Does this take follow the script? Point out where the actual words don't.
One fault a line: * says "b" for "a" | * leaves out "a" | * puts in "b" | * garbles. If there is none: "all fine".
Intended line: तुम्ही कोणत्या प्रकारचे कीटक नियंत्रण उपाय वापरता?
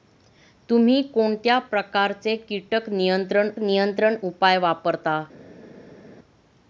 * puts in "नियंत्रण"